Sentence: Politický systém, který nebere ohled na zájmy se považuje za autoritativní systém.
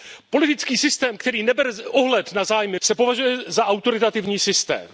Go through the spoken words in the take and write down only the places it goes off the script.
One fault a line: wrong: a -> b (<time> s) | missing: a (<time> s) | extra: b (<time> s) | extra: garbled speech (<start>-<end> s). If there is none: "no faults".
no faults